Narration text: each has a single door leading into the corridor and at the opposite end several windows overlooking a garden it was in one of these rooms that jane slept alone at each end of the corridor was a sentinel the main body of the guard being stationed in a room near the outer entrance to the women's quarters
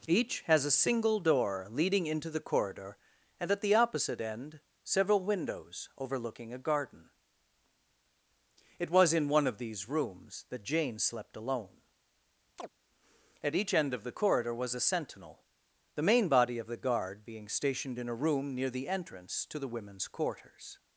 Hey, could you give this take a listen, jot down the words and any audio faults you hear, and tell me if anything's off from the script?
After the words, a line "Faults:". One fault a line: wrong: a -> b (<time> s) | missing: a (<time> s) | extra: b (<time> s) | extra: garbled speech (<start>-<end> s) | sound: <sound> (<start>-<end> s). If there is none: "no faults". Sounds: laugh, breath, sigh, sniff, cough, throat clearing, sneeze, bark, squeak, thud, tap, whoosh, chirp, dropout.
each has a single door leading into the corridor and at the opposite end several windows overlooking a garden it was in one of these rooms that jane slept alone at each end of the corridor was a sentinel the main body of the guard being stationed in a room near the entrance to the women's quarters
Faults:
sound: chirp (12.6-12.7 s)
missing: outer (18.9 s)